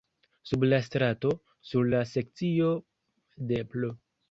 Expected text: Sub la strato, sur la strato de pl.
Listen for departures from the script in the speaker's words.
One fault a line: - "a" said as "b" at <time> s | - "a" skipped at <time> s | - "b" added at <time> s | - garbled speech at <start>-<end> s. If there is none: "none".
- "strato" said as "sekcio" at 2.1 s